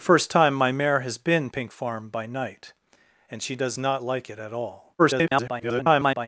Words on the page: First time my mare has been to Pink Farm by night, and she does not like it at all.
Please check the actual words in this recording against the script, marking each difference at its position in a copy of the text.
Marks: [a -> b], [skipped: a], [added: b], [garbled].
First time my mare has been [skipped: to] Pink Farm by night, and she does not like it at all. [garbled]